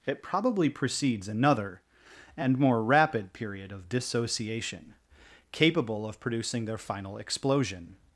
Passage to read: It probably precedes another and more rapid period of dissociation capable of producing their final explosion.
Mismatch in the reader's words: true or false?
false